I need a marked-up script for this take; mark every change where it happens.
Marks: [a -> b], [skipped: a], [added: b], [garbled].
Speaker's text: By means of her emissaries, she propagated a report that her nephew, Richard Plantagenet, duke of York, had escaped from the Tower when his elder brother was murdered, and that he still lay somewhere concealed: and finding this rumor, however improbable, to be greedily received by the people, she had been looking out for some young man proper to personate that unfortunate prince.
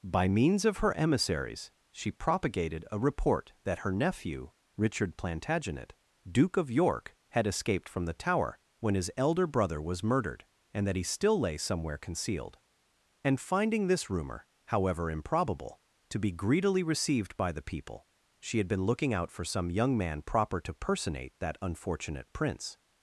By means of her emissaries, she propagated a report that her nephew, Richard Plantagenet, duke of York, had escaped from the Tower when his elder brother was murdered, and that he still lay somewhere concealed: and finding this rumor, however improbable, to be greedily received by the people, she had been looking out for some young man proper to personate that unfortunate prince.